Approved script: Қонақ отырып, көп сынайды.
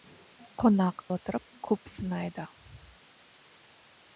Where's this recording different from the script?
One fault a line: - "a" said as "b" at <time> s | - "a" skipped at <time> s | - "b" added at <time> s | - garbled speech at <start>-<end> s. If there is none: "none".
none